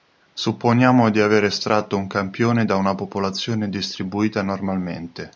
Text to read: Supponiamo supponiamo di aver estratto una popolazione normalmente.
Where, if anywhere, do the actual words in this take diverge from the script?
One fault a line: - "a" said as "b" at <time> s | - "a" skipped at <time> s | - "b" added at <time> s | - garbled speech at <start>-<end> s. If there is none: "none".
- "supponiamo" skipped at 1.1 s
- "un campione da" added at 1.9 s
- "distribuita" added at 3.7 s